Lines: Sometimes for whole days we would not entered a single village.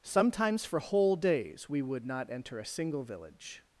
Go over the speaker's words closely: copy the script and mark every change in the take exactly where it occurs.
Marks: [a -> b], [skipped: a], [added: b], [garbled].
Sometimes for whole days we would not [entered -> enter] a single village.